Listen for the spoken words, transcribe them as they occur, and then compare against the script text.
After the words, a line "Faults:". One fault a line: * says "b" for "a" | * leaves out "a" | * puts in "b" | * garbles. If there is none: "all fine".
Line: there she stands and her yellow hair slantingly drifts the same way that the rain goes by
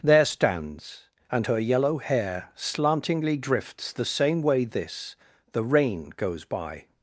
there stands and her yellow hair slantingly drifts the same way this the rain goes by
Faults:
* leaves out "she"
* says "this" for "that"